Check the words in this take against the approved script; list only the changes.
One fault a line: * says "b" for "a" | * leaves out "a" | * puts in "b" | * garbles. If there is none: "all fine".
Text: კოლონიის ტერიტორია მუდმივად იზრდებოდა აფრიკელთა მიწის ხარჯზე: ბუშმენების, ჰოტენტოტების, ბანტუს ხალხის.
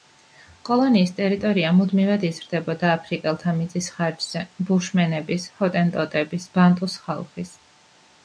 all fine